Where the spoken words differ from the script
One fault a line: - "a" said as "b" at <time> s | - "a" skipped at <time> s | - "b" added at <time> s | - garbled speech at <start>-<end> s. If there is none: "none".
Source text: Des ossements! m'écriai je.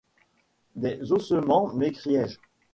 none